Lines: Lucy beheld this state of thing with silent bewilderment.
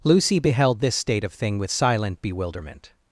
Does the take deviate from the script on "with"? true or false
false